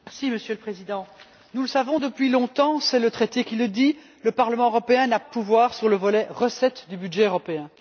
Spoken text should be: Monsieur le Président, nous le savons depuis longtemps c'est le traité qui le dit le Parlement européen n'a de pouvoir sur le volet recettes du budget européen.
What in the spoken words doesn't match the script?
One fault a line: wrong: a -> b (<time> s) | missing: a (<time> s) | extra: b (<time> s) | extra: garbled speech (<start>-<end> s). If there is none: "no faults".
no faults